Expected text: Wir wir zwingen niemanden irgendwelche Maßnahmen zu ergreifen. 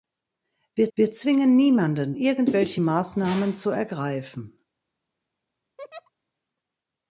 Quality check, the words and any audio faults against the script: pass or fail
fail